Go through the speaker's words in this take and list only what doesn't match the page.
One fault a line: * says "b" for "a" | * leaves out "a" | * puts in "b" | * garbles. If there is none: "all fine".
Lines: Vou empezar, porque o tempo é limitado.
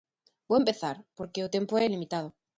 all fine